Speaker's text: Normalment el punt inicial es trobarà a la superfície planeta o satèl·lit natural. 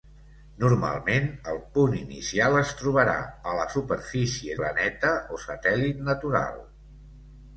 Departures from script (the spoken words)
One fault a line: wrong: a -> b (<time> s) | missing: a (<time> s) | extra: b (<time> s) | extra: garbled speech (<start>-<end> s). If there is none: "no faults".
no faults